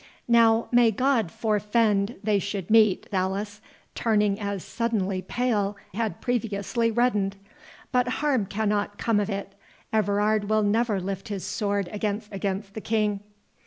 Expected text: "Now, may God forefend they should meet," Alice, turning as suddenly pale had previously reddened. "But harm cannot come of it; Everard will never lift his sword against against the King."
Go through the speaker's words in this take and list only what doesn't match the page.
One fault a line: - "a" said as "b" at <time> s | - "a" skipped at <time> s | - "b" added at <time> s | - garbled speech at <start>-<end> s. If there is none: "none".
none